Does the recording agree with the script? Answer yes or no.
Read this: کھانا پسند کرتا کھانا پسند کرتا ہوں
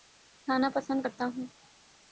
no